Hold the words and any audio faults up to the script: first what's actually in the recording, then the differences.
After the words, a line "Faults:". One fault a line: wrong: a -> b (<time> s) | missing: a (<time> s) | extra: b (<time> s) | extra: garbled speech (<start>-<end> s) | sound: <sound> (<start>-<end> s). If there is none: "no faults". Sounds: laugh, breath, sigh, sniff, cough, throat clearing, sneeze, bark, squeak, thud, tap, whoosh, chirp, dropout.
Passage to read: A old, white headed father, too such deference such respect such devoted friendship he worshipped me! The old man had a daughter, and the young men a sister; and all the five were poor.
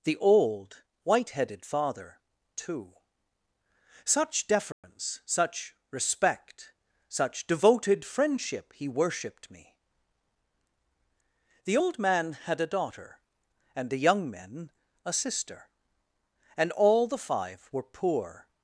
The old, white headed father, too such deference such respect such devoted friendship he worshipped me! The old man had a daughter, and the young men a sister; and all the five were poor.
Faults:
wrong: A -> The (0.0 s)
sound: dropout (4.7-4.8 s)